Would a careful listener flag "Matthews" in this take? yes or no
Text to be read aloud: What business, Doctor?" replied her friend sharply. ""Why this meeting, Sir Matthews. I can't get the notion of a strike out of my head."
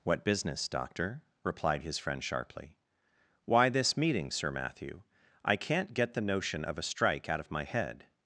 yes